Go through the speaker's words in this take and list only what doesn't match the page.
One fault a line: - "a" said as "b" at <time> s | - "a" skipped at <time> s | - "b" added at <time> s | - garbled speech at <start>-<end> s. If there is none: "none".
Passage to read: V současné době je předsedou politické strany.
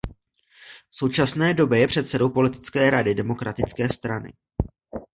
- "rady Demokratické" added at 2.9 s